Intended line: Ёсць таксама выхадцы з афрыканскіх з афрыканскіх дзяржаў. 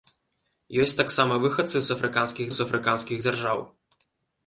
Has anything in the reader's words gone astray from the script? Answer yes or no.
no